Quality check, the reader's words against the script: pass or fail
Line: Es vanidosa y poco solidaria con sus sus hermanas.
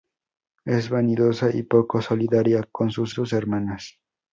pass